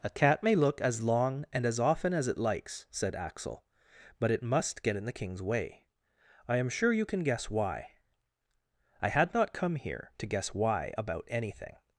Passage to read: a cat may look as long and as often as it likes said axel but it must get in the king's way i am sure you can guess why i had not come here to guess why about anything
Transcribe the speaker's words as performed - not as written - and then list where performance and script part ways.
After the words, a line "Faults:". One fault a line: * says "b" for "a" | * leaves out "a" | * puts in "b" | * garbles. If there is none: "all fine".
a cat may look as long and as often as it likes said axel but it must get in the king's way i am sure you can guess why i had not come here to guess why about anything
Faults:
all fine